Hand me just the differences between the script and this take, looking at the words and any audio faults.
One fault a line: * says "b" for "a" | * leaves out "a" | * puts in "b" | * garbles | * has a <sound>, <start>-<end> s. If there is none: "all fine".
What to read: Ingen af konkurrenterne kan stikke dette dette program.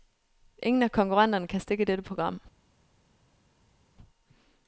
* leaves out "dette"